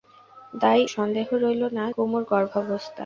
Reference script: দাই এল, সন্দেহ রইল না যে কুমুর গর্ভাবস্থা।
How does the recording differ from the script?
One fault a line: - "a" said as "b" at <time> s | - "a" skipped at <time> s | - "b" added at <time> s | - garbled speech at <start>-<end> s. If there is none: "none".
- "এল" skipped at 0.8 s
- "যে" skipped at 1.9 s